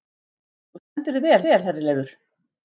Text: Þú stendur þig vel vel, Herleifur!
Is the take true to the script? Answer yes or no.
yes